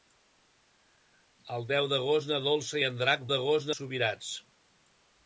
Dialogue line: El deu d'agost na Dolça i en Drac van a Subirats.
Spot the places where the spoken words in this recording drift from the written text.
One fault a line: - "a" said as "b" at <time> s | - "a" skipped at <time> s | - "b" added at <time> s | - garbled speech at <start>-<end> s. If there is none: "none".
- "van" said as "d'agost" at 3.3 s